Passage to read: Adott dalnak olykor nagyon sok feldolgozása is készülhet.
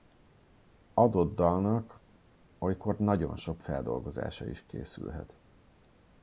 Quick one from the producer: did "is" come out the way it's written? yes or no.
yes